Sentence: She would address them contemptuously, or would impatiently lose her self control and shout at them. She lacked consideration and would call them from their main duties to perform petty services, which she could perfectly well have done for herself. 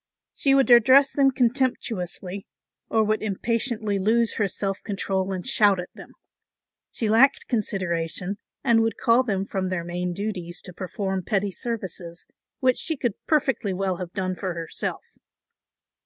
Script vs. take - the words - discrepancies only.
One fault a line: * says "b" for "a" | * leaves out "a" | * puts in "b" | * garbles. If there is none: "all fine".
all fine